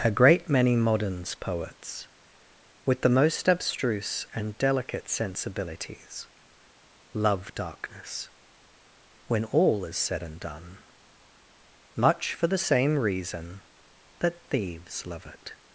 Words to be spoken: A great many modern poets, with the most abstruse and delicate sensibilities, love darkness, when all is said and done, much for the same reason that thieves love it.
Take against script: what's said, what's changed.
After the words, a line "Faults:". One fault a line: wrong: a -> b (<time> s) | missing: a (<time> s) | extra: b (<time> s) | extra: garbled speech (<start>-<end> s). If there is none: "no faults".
A great many moderns poets, with the most abstruse and delicate sensibilities, love darkness, when all is said and done, much for the same reason that thieves love it.
Faults:
wrong: modern -> moderns (0.8 s)